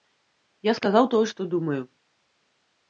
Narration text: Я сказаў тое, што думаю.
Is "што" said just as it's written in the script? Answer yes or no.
yes